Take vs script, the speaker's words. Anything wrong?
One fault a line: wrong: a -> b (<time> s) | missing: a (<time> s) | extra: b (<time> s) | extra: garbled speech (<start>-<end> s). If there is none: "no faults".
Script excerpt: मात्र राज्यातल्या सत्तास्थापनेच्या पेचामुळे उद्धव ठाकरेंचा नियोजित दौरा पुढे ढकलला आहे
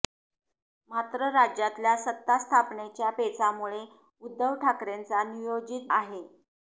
missing: दौरा पुढे ढकलला (5.9 s)